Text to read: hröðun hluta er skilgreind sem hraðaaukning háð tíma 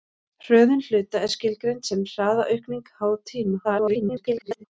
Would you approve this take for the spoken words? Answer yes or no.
no